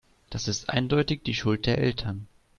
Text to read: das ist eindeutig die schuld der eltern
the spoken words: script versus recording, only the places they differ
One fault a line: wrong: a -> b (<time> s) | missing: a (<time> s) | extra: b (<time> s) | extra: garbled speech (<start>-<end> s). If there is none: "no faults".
no faults